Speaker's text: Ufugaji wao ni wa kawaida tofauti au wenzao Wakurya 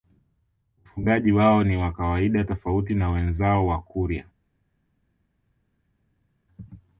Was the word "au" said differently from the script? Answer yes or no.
yes